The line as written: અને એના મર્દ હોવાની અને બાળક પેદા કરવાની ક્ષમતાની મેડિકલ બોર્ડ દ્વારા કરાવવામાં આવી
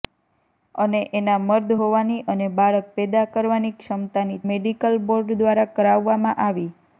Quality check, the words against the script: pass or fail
pass